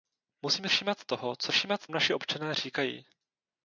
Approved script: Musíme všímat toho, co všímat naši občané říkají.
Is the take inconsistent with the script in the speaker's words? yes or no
no